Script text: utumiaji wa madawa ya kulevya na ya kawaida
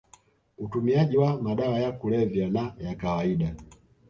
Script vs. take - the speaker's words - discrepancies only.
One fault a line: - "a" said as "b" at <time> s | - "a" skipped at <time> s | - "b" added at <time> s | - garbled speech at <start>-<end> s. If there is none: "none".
none